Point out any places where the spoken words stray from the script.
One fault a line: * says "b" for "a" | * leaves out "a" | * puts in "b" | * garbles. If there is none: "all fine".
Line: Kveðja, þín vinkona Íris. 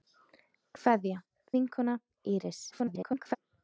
* leaves out "þín"
* garbles